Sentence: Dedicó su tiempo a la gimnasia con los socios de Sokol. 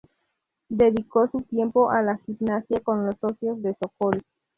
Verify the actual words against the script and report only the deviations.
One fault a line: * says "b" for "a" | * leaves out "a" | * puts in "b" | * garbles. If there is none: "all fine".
all fine